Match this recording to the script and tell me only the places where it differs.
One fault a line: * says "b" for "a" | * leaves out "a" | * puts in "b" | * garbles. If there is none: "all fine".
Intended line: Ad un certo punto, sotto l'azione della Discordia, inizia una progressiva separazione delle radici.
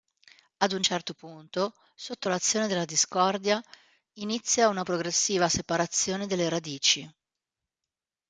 all fine